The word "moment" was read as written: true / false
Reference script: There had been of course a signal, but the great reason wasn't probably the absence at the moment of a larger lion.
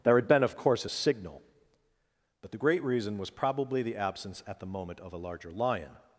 true